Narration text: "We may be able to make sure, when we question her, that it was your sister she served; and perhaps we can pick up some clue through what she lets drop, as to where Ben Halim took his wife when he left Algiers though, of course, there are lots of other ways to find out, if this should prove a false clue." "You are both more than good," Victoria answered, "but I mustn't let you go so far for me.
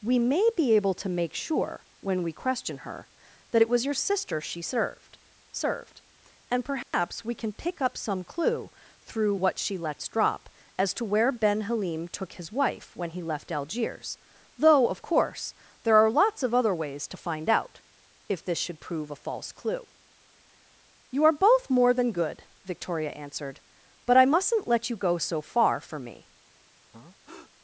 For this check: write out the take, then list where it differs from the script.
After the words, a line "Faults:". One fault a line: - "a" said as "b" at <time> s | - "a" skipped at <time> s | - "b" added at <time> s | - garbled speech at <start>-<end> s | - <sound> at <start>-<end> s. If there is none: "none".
"We may be able to make sure, when we question her, that it was your sister she served served; and perhaps we can pick up some clue through what she lets drop, as to where Ben Halim took his wife when he left Algiers though, of course, there are lots of other ways to find out, if this should prove a false clue." "You are both more than good," Victoria answered, "but I mustn't let you go so far for me.
Faults:
- "served" added at 5.5 s
- dropout at 6.8-6.9 s
- breath at 26.9-27.5 s